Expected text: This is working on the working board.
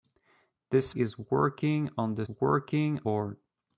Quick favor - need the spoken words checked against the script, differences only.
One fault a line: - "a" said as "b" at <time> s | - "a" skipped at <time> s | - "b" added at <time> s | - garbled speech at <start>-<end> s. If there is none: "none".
none